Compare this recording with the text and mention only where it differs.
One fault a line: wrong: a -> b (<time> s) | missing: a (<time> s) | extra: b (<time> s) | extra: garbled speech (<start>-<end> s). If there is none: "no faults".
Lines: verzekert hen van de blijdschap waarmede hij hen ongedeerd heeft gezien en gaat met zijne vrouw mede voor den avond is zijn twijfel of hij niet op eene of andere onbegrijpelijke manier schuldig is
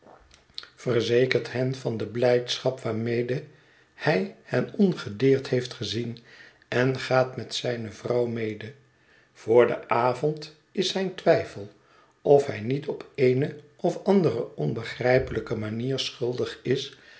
no faults